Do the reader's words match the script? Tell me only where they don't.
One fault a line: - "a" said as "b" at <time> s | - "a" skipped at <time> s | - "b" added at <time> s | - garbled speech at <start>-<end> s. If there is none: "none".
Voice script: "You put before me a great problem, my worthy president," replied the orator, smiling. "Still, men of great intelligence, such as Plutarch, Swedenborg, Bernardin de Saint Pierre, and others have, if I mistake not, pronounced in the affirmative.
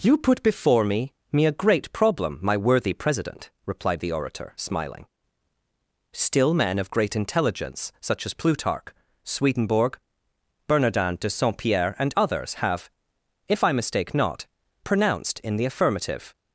- "me" added at 1.3 s